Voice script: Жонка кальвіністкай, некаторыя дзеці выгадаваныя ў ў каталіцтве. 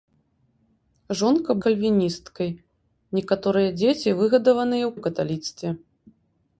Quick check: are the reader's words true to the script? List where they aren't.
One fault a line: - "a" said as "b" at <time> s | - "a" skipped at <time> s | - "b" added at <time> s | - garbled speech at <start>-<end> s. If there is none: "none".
none